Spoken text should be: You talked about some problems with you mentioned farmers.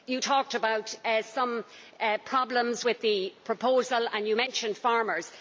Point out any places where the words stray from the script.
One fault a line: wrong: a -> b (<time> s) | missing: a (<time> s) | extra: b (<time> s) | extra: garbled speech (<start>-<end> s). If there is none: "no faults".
extra: the proposal and (3.0 s)